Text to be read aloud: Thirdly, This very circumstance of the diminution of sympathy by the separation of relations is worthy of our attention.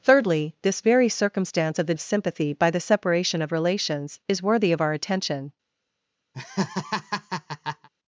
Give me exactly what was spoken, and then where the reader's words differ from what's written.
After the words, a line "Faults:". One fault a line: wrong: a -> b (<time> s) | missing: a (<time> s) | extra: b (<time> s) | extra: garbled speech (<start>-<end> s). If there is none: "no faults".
Thirdly, This very circumstance of the of sympathy by the separation of relations is worthy of our attention.
Faults:
missing: diminution (1.9 s)